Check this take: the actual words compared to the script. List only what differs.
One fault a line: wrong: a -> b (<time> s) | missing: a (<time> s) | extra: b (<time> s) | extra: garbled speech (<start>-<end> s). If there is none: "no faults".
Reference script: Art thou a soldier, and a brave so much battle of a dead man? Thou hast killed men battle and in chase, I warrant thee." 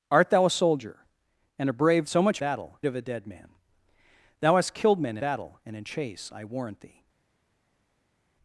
no faults